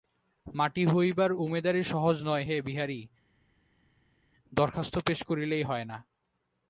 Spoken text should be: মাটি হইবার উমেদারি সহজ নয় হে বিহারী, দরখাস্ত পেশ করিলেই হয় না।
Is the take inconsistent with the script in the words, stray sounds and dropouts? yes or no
no